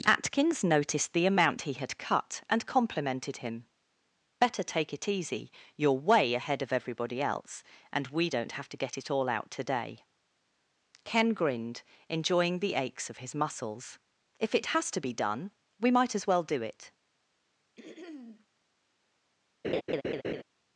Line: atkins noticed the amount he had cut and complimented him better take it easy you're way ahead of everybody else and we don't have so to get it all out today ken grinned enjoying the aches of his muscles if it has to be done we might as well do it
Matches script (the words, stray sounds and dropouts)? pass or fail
fail